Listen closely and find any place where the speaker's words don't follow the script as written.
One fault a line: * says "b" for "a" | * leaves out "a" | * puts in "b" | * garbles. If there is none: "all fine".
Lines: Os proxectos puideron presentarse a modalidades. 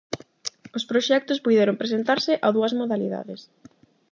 * puts in "dúas"